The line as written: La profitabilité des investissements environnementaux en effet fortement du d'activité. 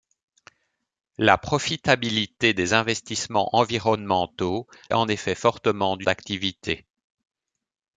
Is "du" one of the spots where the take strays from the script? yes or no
no